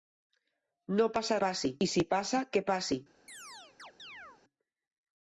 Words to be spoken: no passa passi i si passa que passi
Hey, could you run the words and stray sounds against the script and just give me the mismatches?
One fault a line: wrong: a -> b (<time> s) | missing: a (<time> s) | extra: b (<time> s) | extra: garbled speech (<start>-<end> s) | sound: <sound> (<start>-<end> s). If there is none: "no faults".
sound: chirp (3.3-4.4 s)